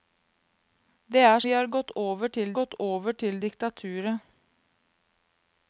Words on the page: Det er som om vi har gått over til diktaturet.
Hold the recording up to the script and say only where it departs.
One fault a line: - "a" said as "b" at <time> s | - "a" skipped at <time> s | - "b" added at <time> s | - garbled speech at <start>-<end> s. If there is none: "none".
- "som om vi har" said as "vi har gått over til" at 1.4 s